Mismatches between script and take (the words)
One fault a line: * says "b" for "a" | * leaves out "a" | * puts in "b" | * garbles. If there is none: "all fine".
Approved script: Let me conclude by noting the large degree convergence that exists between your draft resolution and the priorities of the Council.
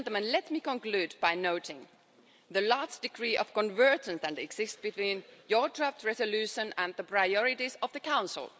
* puts in "of"